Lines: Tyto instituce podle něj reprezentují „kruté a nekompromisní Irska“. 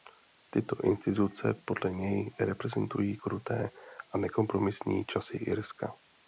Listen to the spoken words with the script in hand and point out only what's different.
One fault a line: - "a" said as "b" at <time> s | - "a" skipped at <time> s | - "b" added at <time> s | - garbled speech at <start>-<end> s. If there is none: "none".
- "časy" added at 5.0 s